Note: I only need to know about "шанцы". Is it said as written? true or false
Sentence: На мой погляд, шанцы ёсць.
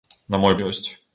false